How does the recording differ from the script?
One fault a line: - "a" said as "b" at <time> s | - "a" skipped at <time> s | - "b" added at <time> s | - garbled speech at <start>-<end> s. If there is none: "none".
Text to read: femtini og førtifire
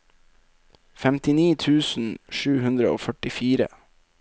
- "tusen sju hundre" added at 1.6 s